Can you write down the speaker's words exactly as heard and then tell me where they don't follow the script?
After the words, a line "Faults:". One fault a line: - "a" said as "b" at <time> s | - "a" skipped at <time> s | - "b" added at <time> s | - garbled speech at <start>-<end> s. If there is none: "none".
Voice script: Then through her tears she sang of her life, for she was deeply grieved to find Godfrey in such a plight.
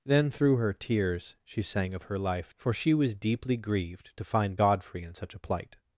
Then through her tears she sang of her life, for she was deeply grieved to find Godfrey in such a plight.
Faults:
none